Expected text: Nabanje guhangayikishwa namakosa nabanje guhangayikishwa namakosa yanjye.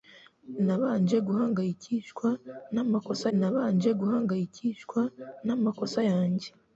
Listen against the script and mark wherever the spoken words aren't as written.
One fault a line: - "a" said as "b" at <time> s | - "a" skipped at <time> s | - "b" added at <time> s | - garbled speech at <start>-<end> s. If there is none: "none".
none